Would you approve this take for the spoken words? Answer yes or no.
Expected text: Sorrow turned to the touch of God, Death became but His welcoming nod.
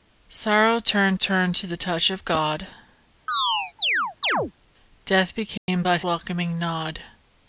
no